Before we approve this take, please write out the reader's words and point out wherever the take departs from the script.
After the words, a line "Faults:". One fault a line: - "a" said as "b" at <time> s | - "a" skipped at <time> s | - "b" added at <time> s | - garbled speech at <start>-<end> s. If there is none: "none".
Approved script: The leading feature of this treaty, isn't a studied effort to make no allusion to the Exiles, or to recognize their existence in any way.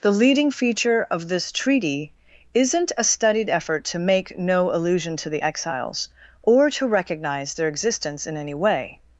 The leading feature of this treaty, isn't a studied effort to make no allusion to the Exiles, or to recognize their existence in any way.
Faults:
none